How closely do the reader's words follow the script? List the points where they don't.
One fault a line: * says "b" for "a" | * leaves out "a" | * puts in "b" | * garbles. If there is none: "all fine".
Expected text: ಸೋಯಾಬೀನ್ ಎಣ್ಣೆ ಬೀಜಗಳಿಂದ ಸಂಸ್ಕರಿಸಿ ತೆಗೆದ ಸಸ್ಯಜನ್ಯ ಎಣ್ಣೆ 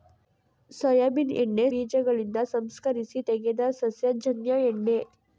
all fine